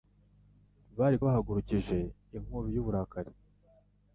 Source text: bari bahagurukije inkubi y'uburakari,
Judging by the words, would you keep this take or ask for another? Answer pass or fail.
pass